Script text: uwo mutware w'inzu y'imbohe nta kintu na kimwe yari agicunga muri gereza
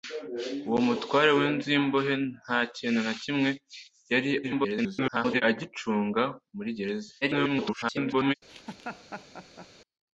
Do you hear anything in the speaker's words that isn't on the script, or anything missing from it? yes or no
yes